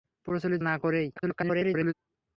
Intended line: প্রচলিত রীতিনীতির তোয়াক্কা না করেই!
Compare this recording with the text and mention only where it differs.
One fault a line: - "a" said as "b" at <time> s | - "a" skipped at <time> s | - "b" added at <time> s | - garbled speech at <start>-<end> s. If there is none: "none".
- "রীতিনীতির তোয়াক্কা" skipped at 0.6 s
- garbled speech at 1.2-1.9 s